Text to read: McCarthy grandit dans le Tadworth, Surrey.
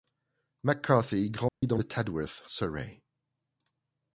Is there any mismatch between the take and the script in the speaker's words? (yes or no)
no